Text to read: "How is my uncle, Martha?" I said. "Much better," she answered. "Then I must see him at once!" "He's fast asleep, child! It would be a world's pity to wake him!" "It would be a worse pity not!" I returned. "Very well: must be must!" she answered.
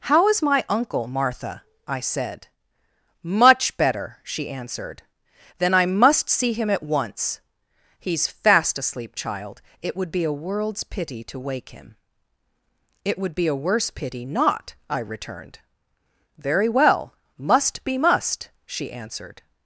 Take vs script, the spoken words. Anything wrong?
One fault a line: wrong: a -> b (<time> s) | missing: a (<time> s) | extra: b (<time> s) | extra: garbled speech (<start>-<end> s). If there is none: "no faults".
no faults